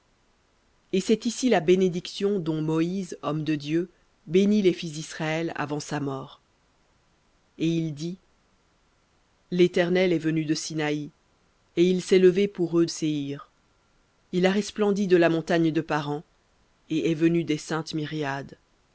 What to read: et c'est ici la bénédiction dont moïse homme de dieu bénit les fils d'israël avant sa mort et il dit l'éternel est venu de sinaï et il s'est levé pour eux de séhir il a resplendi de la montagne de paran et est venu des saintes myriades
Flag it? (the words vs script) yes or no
yes